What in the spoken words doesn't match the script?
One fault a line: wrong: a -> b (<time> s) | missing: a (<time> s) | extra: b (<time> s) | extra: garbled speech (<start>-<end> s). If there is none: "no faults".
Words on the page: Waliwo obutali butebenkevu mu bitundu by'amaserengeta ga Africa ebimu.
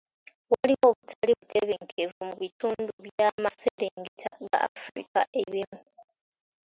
no faults